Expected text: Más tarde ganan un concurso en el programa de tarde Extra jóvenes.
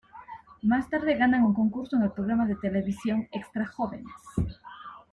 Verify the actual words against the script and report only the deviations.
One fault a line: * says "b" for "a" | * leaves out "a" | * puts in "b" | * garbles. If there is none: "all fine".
* says "televisión" for "tarde"